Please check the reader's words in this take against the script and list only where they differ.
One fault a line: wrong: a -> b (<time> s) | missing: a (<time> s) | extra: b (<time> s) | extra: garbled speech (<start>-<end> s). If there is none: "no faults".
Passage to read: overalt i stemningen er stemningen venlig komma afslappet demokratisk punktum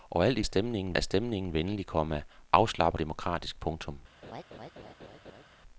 no faults